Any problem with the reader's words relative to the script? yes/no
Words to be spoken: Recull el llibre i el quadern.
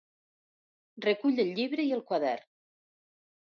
no